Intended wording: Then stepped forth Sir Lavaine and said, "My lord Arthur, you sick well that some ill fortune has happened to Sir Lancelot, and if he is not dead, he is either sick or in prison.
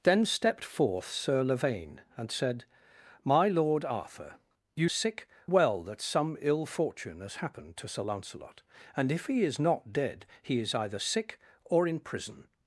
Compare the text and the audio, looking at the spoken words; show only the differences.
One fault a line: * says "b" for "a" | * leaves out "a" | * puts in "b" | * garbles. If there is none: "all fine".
all fine